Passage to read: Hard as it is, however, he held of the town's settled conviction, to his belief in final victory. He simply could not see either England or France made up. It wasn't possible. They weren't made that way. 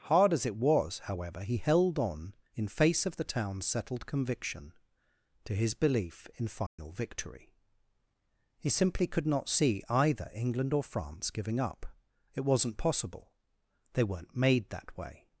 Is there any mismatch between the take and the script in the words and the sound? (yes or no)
yes